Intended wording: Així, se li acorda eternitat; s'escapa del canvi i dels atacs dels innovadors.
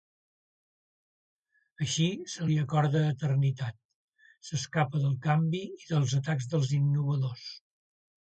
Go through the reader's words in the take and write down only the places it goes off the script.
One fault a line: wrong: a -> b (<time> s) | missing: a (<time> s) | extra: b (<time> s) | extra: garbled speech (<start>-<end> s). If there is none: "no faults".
no faults